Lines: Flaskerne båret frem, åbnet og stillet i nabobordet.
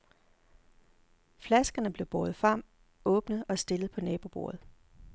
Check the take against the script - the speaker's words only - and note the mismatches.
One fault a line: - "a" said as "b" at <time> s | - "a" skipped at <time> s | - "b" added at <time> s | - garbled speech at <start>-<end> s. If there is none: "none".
- "blev" added at 1.9 s
- "i" said as "på" at 3.9 s